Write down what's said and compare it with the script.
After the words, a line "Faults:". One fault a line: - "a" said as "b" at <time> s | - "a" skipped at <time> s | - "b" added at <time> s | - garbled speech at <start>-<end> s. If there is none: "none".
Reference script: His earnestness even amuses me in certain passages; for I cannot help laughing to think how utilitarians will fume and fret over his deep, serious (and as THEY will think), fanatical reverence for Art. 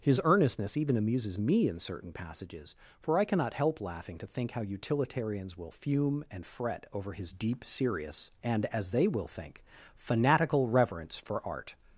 His earnestness even amuses me in certain passages; for I cannot help laughing to think how utilitarians will fume and fret over his deep, serious (and as THEY will think), fanatical reverence for Art.
Faults:
none